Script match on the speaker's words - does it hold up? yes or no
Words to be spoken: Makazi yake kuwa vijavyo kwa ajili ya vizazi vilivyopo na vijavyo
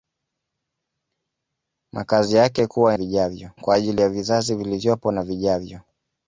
yes